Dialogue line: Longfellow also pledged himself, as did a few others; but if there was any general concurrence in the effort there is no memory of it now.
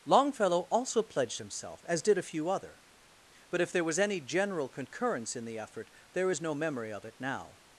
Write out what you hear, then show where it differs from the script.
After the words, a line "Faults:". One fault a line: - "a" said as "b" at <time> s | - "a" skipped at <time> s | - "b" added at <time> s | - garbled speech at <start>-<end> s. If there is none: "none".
Longfellow also pledged himself, as did a few other; but if there was any general concurrence in the effort there is no memory of it now.
Faults:
- "others" said as "other" at 2.5 s